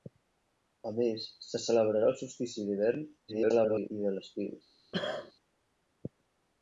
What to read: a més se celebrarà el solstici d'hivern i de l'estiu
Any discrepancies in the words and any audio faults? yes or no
yes